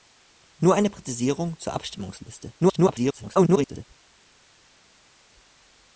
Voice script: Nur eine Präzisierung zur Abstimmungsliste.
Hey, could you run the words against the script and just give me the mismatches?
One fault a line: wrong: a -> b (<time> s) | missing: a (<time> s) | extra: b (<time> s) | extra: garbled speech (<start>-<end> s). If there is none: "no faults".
extra: garbled speech (2.6-3.8 s)